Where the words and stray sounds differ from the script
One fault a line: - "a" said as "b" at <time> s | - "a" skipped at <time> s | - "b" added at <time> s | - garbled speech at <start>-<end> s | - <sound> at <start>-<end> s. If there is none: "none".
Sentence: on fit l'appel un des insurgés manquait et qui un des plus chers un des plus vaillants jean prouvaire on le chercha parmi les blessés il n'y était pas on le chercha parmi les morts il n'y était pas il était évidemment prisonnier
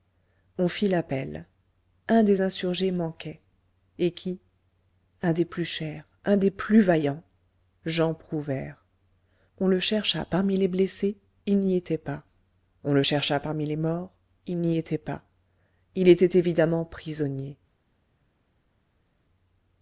none